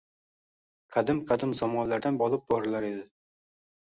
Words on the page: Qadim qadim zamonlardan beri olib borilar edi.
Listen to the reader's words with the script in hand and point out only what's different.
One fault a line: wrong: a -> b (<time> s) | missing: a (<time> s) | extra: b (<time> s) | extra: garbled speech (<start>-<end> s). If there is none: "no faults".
missing: beri (2.2 s)